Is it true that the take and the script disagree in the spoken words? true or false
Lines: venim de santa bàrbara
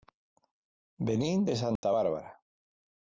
false